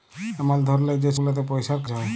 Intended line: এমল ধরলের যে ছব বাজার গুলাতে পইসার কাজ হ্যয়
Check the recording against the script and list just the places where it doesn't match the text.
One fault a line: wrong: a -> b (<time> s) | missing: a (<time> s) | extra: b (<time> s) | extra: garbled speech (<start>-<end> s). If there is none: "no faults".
missing: ছব বাজার (1.1 s)
missing: কাজ (1.8 s)